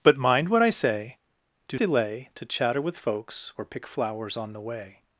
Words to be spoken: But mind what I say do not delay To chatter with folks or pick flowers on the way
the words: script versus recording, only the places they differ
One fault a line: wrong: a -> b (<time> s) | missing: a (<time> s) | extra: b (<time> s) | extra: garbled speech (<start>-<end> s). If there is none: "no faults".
missing: not (1.8 s)